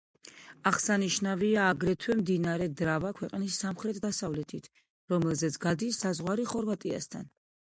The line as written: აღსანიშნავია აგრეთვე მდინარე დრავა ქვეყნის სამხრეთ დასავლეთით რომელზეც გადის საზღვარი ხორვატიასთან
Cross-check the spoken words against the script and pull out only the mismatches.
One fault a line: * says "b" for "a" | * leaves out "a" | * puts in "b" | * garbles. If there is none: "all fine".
all fine